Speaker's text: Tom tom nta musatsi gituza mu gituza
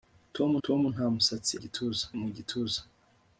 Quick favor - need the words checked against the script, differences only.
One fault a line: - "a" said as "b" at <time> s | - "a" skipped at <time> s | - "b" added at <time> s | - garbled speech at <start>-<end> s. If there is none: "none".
none